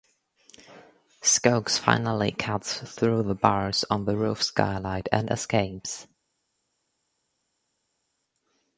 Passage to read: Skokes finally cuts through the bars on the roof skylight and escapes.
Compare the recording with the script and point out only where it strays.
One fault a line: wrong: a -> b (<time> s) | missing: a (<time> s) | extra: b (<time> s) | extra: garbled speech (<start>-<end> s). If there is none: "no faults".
no faults